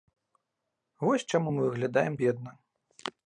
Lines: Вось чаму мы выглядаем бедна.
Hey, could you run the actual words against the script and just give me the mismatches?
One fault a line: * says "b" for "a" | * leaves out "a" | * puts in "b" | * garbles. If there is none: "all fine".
all fine